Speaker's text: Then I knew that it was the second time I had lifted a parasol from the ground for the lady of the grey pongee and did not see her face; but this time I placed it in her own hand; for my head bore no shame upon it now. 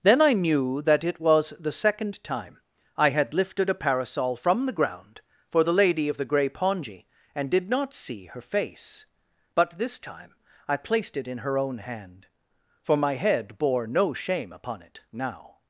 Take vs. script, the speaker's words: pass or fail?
pass